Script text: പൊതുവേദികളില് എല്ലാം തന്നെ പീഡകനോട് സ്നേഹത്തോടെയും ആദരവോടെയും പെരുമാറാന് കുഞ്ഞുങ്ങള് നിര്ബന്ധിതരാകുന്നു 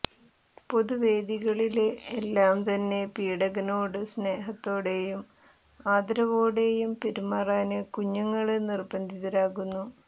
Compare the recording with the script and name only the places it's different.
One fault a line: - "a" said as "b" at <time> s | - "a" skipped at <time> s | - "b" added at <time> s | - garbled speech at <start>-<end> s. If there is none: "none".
none